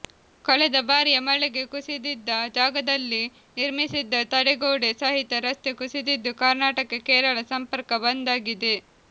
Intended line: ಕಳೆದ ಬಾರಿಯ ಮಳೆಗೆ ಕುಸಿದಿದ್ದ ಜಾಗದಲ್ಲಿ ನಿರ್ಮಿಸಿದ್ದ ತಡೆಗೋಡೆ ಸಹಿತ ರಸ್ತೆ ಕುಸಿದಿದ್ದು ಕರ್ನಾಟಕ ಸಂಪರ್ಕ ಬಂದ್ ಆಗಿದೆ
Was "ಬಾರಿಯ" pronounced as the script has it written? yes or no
yes